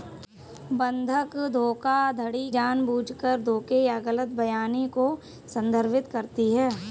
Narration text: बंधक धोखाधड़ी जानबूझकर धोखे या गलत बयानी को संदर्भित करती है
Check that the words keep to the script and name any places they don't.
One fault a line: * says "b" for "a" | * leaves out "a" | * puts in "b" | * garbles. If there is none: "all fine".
all fine